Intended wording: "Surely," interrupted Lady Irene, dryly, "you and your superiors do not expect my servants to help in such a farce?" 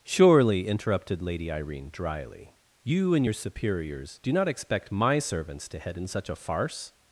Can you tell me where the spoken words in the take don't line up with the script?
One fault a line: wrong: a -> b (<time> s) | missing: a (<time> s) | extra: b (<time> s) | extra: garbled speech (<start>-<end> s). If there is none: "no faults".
wrong: help -> head (5.8 s)